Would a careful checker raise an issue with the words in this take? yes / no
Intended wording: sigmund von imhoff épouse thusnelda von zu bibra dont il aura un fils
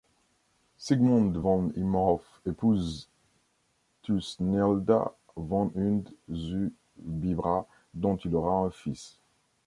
yes